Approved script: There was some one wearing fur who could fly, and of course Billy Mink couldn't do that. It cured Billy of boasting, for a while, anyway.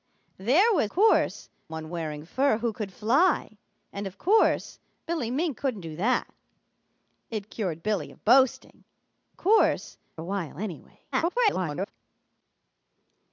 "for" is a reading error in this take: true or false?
true